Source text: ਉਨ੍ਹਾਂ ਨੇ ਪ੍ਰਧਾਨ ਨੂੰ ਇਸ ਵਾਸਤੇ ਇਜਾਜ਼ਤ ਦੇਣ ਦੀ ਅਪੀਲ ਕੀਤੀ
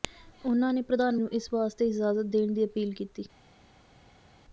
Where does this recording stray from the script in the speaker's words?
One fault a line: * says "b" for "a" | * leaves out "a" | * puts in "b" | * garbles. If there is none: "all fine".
all fine